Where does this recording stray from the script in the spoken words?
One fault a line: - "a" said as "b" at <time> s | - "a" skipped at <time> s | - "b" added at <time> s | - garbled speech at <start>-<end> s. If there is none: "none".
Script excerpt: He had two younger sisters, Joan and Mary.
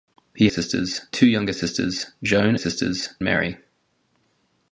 - "had" said as "sisters" at 0.5 s
- "and" said as "sisters" at 2.5 s